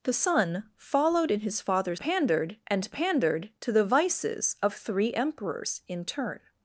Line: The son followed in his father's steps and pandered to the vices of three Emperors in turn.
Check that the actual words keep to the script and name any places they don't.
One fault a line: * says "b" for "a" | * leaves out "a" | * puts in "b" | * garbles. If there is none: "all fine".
* says "pandered" for "steps"